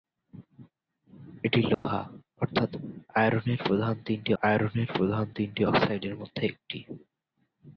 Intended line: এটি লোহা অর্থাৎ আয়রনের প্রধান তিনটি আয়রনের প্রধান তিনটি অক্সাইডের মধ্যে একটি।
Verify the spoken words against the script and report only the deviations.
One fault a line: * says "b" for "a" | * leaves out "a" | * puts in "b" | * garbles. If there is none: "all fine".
all fine